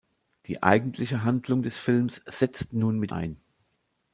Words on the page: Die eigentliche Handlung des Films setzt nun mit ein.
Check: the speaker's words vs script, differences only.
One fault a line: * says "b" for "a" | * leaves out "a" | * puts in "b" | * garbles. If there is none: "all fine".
all fine